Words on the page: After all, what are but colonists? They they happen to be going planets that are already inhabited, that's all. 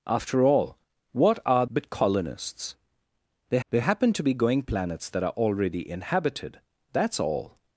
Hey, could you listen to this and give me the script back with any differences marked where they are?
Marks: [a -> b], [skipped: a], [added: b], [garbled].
After all, what are but colonists? They they happen to be going planets that are already inhabited, that's all.